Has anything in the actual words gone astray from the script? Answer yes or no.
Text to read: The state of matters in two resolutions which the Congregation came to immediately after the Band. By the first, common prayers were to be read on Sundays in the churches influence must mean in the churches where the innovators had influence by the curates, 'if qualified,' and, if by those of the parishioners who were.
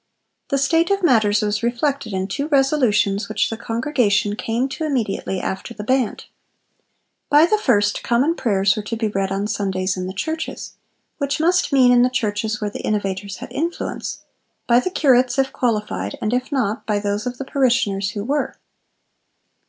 yes